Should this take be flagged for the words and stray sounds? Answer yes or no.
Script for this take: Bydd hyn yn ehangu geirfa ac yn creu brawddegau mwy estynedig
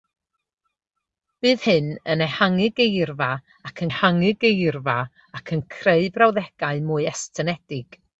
yes